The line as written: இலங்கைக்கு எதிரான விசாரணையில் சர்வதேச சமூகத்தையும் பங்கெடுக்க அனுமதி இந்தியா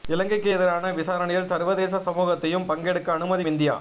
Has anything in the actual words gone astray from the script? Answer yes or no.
no